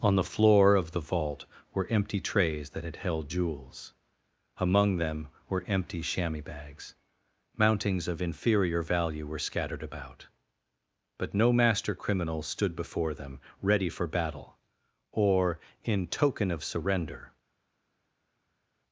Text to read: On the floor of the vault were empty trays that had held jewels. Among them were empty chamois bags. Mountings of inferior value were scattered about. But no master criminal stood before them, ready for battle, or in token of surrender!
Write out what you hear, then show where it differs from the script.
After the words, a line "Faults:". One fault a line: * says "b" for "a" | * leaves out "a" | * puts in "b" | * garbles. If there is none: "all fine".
On the floor of the vault were empty trays that had held jewels. Among them were empty chamois bags. Mountings of inferior value were scattered about. But no master criminal stood before them, ready for battle, or in token of surrender!
Faults:
all fine